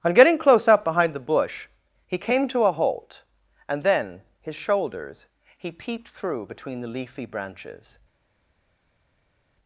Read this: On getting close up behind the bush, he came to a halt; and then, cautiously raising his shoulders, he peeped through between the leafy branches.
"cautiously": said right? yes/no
no